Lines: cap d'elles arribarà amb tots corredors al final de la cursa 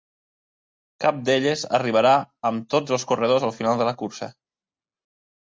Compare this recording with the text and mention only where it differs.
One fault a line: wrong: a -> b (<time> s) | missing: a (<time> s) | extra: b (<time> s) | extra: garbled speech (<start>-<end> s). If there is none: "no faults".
extra: els (3.0 s)